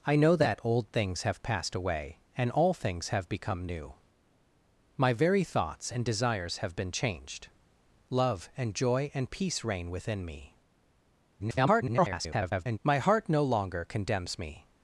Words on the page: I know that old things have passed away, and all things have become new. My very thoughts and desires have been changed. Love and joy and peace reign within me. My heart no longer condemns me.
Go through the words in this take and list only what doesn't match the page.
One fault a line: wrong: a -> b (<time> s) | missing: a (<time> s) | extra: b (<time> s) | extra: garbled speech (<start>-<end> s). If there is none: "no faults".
extra: garbled speech (11.4-12.8 s)